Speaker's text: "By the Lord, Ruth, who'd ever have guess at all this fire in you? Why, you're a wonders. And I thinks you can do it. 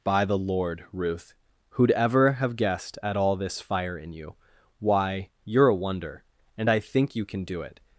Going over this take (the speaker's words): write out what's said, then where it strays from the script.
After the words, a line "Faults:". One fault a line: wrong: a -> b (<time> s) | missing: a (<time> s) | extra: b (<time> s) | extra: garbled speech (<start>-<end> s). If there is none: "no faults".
"By the Lord, Ruth, who'd ever have guessed at all this fire in you? Why, you're a wonder. And I think you can do it.
Faults:
wrong: guess -> guessed (2.5 s)
wrong: wonders -> wonder (5.8 s)
wrong: thinks -> think (6.8 s)